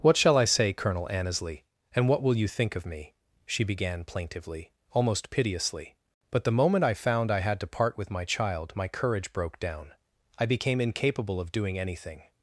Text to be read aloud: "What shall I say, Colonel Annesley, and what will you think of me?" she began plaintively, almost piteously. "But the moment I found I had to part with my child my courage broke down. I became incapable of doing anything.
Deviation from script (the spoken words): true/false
false